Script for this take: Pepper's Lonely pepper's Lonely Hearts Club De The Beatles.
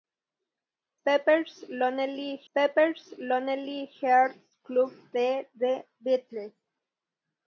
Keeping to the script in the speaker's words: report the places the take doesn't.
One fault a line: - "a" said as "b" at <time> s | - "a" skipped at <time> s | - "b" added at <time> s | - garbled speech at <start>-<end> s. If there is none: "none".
none